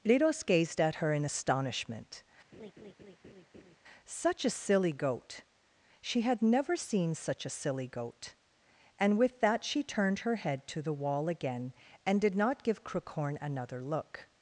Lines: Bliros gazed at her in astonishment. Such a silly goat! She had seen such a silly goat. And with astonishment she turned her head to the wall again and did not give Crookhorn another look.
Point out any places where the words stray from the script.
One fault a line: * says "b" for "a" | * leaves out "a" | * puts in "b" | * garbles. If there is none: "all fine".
* puts in "never"
* says "that" for "astonishment"